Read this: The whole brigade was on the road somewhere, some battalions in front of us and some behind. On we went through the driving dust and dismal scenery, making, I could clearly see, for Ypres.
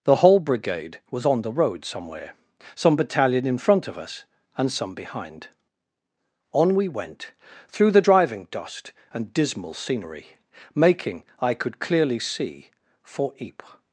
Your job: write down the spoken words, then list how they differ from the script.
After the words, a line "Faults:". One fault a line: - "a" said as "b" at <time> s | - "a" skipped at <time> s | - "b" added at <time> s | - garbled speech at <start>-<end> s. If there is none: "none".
The whole brigade was on the road somewhere, some battalion in front of us and some behind. On we went through the driving dust and dismal scenery, making, I could clearly see, for Ypres.
Faults:
- "battalions" said as "battalion" at 3.0 s